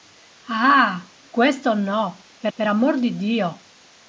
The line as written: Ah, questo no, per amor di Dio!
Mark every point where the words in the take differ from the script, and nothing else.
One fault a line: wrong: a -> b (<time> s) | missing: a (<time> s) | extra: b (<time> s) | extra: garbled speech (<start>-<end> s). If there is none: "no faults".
extra: per (2.5 s)